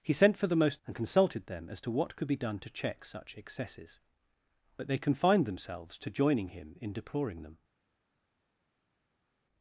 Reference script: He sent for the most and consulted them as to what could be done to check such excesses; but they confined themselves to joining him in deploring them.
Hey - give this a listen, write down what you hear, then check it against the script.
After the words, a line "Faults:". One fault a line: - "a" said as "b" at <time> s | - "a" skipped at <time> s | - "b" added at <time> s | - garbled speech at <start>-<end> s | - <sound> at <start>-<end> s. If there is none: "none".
He sent for the most and consulted them as to what could be done to check such excesses; but they confined themselves to joining him in deploring them.
Faults:
none